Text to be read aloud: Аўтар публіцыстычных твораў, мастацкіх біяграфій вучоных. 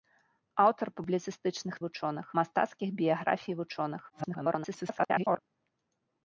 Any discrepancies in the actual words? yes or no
yes